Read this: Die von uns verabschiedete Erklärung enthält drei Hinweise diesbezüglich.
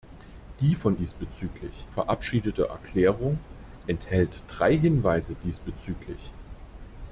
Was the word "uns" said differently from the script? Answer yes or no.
yes